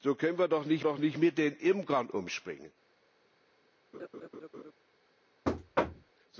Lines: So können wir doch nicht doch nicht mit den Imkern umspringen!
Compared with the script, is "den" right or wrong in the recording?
right